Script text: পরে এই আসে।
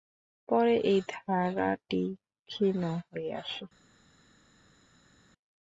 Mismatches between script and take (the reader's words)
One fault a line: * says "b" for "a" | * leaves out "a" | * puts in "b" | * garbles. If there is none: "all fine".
* puts in "ধারাটি ক্ষীণ হয়ে"